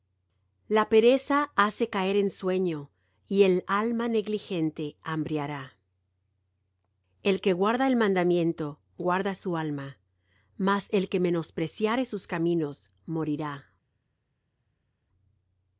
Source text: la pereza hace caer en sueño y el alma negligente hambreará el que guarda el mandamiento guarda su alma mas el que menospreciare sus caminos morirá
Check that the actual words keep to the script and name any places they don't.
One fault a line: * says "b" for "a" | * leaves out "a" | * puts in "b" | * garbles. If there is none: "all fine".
all fine